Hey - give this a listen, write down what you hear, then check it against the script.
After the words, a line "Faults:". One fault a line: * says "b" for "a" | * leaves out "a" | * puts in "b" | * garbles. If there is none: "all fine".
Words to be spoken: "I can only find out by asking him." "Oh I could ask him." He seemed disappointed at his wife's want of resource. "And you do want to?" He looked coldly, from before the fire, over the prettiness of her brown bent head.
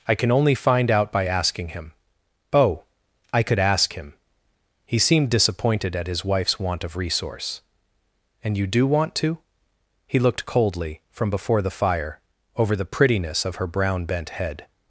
"I can only find out by asking him." "Oh I could ask him." He seemed disappointed at his wife's want of resource. "And you do want to?" He looked coldly, from before the fire, over the prettiness of her brown bent head.
Faults:
all fine